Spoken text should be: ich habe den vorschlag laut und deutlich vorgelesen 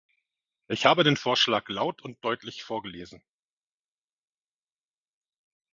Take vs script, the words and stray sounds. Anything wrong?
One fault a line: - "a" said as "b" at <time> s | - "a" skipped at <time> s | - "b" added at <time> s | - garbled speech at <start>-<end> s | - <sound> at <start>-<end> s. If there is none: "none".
none